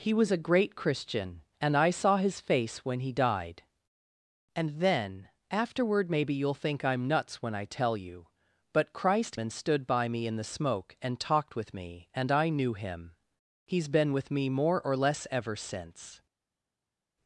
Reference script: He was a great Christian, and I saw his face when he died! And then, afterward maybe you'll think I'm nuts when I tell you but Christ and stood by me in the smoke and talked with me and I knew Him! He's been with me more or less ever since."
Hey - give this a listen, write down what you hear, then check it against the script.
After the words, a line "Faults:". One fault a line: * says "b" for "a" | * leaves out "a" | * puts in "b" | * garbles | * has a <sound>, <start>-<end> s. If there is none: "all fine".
He was a great Christian, and I saw his face when he died! And then, afterward maybe you'll think I'm nuts when I tell you but Christ and stood by me in the smoke and talked with me and I knew Him! He's been with me more or less ever since."
Faults:
all fine